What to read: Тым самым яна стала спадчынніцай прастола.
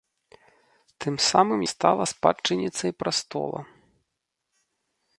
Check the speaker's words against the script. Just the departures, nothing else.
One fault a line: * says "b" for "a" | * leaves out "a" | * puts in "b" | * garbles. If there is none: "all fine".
* leaves out "яна"